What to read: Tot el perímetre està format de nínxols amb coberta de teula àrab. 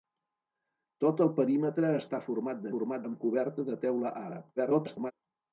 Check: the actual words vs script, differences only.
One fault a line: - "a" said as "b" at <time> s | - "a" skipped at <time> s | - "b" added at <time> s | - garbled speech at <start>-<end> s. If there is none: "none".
- "nínxols" said as "format" at 2.7 s
- garbled speech at 4.6-5.1 s